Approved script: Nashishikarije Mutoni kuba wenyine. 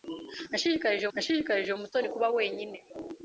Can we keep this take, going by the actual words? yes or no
no